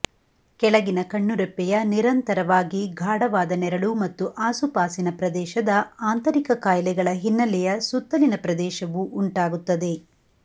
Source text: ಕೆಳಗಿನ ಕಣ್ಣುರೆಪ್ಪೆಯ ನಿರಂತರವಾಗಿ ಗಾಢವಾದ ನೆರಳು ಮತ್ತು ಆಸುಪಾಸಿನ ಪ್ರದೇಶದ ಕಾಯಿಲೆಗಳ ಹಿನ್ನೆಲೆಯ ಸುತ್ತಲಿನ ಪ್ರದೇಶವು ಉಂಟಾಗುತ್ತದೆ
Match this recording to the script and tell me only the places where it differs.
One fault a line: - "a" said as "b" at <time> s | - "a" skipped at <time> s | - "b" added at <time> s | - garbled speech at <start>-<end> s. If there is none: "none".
- "ಆಂತರಿಕ" added at 6.0 s